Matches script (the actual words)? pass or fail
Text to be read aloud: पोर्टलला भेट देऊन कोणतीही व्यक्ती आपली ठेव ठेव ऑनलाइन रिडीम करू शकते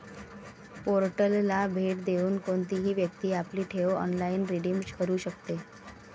fail